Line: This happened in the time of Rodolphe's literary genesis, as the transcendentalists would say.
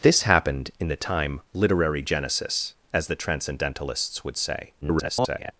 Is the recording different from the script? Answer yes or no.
yes